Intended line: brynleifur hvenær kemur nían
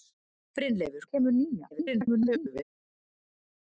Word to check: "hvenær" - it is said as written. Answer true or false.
false